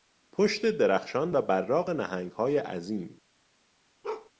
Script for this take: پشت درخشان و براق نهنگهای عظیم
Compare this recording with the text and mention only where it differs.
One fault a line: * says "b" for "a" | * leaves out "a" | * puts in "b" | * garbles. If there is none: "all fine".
all fine